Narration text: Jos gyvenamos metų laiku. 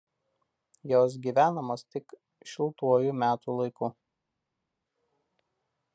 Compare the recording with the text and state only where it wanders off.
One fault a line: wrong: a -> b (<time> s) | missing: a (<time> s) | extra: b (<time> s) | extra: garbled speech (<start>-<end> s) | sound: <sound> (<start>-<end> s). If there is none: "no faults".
extra: tik šiltuoju (2.0 s)